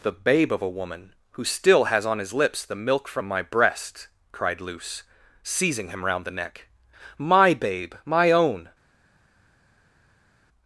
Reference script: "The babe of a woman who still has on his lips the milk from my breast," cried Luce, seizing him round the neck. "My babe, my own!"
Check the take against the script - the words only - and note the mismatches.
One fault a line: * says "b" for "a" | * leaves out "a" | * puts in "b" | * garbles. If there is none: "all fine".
all fine